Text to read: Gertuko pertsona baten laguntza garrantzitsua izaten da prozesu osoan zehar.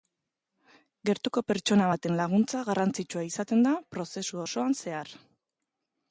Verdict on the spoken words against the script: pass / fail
pass